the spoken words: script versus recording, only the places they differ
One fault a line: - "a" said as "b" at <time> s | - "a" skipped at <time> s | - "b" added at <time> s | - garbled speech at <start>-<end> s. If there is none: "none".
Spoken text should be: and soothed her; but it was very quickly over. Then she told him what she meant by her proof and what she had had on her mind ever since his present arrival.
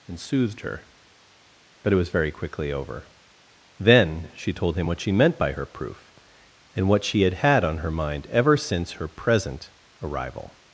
- "his" said as "her" at 8.9 s